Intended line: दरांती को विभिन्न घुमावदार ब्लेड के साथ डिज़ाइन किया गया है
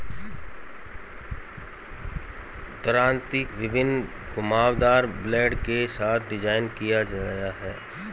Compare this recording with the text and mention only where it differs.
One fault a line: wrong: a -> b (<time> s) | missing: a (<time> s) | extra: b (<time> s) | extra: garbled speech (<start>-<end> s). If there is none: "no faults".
missing: को (3.4 s)